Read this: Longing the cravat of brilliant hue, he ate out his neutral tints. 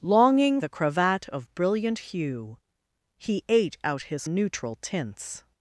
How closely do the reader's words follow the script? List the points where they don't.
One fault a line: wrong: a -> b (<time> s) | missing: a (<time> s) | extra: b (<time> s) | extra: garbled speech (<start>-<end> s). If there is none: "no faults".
no faults